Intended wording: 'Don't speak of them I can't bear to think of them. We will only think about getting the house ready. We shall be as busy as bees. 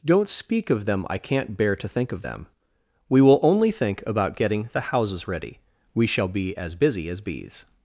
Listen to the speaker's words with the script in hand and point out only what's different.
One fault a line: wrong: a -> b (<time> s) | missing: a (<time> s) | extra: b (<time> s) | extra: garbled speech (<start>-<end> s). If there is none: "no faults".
wrong: house -> houses (4.8 s)